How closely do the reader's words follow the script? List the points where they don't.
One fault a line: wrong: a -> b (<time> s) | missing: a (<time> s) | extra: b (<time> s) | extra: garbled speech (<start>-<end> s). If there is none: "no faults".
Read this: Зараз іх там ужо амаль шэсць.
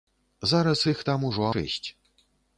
missing: амаль (1.5 s)